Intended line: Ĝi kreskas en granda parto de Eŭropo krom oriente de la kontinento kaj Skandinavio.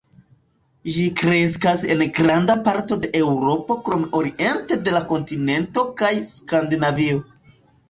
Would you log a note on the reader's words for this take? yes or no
no